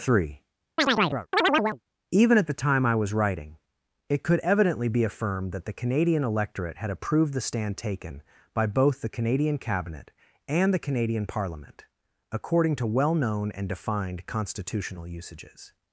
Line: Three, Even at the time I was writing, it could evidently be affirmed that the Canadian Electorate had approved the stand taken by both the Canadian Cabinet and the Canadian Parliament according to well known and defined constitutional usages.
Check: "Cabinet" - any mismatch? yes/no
no